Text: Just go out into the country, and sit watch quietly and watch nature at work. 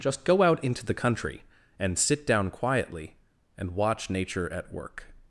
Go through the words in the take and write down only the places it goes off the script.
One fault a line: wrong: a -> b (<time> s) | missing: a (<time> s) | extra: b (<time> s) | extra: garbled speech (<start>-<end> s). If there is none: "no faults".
wrong: watch -> down (2.2 s)